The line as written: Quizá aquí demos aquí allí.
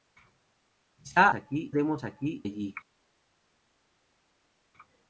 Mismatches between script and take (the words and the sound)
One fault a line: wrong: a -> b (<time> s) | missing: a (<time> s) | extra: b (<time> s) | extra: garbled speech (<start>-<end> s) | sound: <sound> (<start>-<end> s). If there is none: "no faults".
no faults